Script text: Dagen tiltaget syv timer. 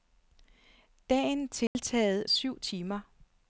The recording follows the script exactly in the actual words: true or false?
true